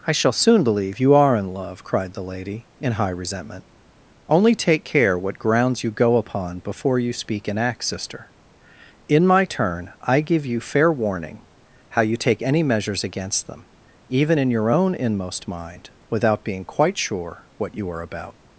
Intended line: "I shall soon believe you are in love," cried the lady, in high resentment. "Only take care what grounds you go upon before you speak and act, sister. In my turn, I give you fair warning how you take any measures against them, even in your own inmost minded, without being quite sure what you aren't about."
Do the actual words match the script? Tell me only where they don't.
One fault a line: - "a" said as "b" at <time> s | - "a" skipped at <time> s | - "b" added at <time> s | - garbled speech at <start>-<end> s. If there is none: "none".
- "minded" said as "mind" at 15.5 s
- "aren't" said as "are" at 17.9 s